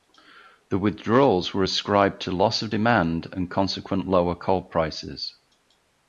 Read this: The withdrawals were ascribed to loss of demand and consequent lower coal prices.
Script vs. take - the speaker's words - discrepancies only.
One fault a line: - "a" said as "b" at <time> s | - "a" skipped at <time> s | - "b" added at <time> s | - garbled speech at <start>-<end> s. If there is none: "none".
none